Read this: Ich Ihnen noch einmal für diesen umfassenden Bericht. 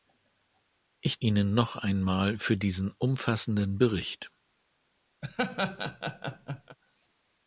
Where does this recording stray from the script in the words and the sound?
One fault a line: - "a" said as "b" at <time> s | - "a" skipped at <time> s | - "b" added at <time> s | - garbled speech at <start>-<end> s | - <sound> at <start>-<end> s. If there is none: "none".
- laugh at 5.2-6.8 s